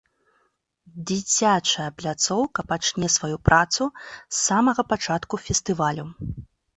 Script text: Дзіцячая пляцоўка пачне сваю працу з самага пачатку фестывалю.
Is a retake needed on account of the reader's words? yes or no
no